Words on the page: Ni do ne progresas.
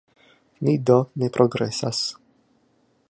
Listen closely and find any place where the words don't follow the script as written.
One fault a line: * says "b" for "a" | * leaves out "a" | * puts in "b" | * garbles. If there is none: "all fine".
all fine